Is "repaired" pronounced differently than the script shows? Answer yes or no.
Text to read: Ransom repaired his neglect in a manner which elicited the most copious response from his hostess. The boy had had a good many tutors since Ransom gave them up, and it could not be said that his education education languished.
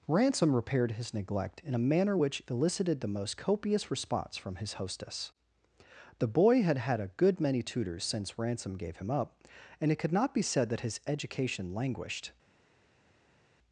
no